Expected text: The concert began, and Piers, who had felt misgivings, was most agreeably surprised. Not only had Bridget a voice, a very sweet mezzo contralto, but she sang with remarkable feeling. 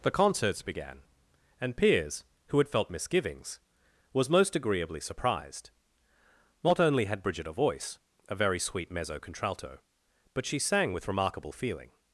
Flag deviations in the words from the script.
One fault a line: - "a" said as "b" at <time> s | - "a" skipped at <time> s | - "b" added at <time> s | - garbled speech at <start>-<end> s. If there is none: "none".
- "concert" said as "concerts" at 0.1 s